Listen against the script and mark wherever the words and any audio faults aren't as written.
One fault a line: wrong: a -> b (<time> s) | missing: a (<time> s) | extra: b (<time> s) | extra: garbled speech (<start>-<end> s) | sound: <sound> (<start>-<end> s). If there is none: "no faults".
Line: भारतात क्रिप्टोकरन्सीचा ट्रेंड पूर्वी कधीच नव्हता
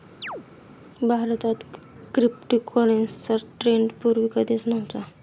sound: chirp (0.2-0.5 s)